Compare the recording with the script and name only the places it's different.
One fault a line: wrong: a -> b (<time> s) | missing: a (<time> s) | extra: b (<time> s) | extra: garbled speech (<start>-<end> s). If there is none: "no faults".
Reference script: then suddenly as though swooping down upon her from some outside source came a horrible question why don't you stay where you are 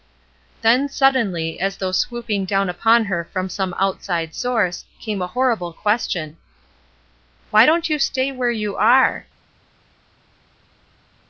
no faults